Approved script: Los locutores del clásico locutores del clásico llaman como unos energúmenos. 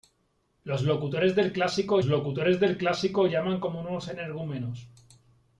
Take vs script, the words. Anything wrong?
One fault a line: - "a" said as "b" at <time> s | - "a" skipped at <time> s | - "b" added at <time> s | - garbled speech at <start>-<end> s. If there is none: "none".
none